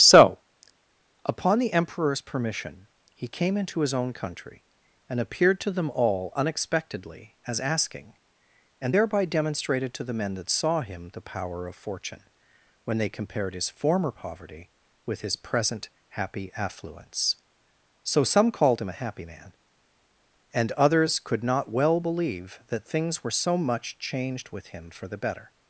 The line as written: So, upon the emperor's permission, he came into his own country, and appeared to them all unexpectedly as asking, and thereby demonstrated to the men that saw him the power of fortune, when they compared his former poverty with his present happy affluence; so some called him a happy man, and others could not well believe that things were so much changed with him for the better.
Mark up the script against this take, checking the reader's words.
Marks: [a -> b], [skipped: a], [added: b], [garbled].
So, upon the emperor's permission, he came into his own country, and appeared to them all unexpectedly as asking, and thereby demonstrated to the men that saw him the power of fortune, when they compared his former poverty with his present happy affluence; so some called him a happy man, and others could not well believe that things were so much changed with him for the better.